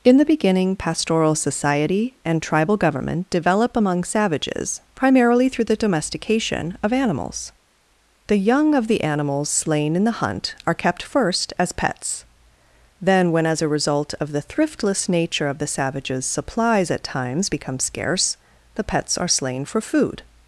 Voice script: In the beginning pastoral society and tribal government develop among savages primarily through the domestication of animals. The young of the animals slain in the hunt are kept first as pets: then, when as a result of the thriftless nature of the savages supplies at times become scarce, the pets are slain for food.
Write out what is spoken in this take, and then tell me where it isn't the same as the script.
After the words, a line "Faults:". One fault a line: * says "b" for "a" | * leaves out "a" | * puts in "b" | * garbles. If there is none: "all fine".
In the beginning pastoral society and tribal government develop among savages primarily through the domestication of animals. The young of the animals slain in the hunt are kept first as pets: then, when as a result of the thriftless nature of the savages supplies at times become scarce, the pets are slain for food.
Faults:
all fine